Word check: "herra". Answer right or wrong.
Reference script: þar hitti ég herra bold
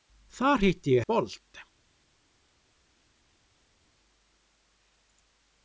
wrong